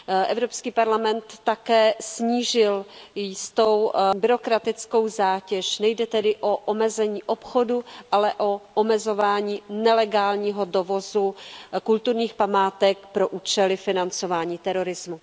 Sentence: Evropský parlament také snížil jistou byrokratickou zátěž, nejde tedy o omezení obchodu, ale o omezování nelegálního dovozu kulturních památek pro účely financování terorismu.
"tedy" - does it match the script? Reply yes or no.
yes